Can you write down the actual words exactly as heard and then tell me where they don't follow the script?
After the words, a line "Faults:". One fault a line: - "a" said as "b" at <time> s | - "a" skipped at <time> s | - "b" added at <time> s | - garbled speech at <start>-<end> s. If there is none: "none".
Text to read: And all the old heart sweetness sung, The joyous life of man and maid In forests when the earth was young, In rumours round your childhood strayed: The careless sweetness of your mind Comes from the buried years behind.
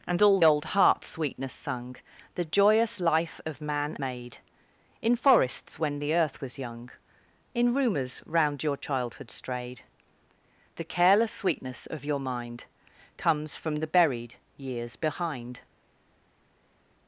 And all old heart sweetness sung, The joyous life of man maid In forests when the earth was young, In rumours round your childhood strayed: The careless sweetness of your mind Comes from the buried years behind.
Faults:
- "the" skipped at 0.4 s
- "and" skipped at 4.0 s